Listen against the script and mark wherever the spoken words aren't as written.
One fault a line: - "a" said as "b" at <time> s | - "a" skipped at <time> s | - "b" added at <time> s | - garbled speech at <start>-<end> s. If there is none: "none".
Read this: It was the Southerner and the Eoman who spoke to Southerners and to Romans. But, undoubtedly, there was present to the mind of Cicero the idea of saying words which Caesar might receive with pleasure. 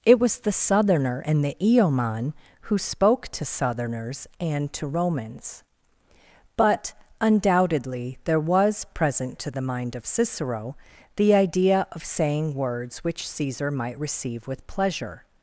none